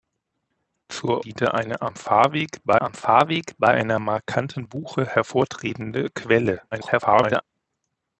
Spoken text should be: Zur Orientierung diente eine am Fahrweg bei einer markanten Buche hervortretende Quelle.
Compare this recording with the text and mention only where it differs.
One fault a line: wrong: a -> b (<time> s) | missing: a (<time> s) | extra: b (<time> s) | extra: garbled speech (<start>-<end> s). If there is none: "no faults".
missing: Orientierung (1.2 s)
extra: am Fahrweg bei (2.8 s)
extra: garbled speech (6.7-7.4 s)